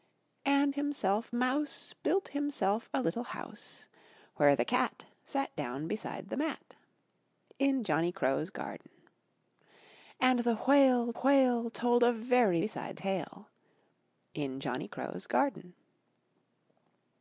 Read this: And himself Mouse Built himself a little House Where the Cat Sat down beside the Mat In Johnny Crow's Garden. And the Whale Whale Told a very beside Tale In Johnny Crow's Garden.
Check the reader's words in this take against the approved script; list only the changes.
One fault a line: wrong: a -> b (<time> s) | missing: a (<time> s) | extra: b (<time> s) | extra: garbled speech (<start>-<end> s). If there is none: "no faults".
no faults